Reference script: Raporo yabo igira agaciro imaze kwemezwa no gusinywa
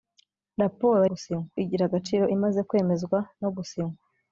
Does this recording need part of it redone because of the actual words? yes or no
yes